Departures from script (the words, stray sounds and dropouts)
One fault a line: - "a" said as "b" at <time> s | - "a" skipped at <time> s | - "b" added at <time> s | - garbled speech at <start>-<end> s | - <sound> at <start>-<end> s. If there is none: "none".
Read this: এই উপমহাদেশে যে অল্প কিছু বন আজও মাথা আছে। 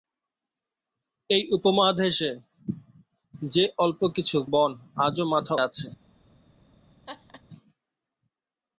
- laugh at 7.1-7.4 s